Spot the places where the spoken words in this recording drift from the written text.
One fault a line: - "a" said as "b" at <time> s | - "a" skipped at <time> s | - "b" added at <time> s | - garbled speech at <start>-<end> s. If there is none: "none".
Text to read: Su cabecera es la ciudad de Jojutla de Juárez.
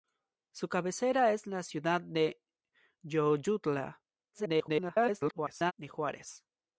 - garbled speech at 4.3-5.7 s